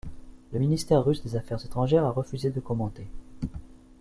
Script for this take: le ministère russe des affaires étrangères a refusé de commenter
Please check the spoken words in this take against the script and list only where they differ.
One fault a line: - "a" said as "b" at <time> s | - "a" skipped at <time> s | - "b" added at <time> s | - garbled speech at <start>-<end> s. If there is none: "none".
none